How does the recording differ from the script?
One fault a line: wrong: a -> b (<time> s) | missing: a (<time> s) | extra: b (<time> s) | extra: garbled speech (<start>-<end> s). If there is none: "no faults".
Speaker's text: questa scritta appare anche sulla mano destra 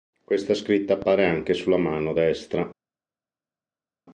no faults